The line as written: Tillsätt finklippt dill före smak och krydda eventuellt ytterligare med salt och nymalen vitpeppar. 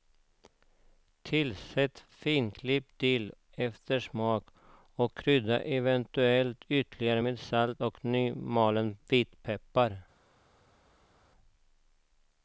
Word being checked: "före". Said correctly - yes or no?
no